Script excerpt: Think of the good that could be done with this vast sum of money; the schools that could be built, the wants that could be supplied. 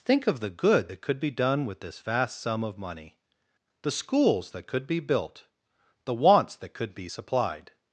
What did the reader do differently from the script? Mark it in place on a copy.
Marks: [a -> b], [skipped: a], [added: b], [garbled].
Think of the good that could be done with this vast sum of money; the schools that could be built, the wants that could be supplied.